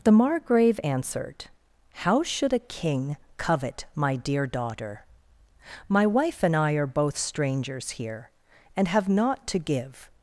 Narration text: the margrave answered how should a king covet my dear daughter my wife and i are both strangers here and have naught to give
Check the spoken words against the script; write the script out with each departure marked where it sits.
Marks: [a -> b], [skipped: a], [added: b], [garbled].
the margrave answered how should a king covet my dear daughter my wife and i are both strangers here and have naught to give